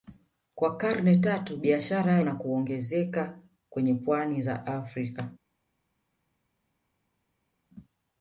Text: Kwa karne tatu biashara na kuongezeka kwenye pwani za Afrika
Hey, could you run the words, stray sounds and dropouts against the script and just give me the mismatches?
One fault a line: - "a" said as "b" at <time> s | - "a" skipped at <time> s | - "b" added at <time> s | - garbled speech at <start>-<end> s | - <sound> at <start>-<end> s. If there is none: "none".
none